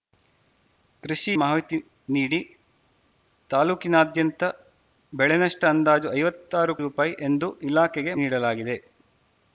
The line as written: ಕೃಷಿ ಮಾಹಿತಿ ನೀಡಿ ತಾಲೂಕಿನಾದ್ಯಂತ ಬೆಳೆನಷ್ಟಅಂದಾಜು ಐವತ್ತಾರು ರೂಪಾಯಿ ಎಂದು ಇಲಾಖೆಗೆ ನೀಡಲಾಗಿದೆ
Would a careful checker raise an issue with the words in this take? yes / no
no